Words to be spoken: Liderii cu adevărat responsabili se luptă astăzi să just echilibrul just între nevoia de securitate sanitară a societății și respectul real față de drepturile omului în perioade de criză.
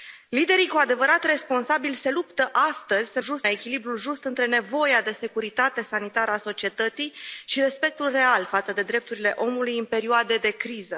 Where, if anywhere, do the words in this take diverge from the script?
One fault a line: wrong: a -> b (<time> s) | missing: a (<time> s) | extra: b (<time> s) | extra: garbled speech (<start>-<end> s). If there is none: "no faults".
no faults